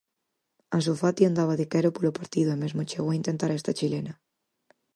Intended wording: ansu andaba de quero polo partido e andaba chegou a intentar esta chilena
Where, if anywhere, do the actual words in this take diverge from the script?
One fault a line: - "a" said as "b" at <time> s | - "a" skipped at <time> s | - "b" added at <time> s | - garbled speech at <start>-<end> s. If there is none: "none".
- "fati" added at 1.0 s
- "andaba" said as "mesmo" at 2.6 s